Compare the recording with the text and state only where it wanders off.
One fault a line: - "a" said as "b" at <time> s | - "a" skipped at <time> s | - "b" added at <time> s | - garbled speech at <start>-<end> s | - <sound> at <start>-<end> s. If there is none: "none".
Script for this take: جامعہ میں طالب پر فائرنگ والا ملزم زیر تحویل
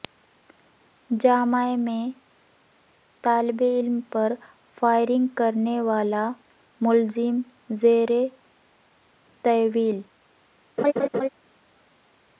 - "علم" added at 3.6 s
- "کرنے" added at 5.3 s
- laugh at 10.8-11.3 s